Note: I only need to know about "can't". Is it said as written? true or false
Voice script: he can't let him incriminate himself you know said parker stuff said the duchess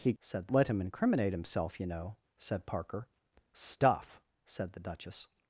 false